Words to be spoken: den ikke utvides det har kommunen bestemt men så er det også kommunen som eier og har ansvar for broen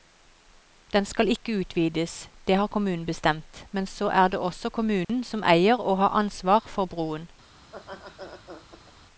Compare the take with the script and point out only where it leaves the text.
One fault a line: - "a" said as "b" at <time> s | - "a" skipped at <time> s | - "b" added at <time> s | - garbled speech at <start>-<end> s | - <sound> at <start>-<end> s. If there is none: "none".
- "skal" added at 1.1 s
- dropout at 5.0-5.1 s
- laugh at 7.6-8.9 s